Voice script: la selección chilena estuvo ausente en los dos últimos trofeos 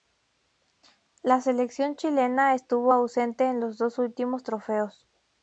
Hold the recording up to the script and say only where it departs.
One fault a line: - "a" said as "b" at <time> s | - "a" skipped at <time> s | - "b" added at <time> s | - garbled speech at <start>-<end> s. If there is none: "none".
none